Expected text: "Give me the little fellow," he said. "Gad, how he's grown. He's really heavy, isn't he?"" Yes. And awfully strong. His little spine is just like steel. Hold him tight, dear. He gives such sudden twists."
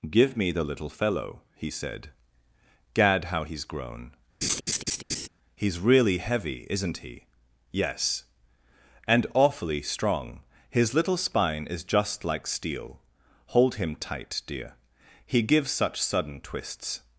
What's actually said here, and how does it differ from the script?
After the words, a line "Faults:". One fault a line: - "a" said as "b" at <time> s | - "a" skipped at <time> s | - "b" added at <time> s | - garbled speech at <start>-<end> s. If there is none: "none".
"Give me the little fellow," he said. "Gad, how he's grown. He's really heavy, isn't he?"" Yes. And awfully strong. His little spine is just like steel. Hold him tight, dear. He gives such sudden twists."
Faults:
none